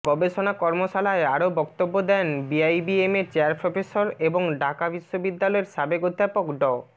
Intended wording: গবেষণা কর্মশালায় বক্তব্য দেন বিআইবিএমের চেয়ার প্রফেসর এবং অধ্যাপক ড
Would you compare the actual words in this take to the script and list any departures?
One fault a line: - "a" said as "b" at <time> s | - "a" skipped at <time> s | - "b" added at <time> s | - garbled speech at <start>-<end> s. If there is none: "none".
- "আরও" added at 1.3 s
- "ঢাকা বিশ্ববিদ্যালয়ের সাবেক" added at 4.6 s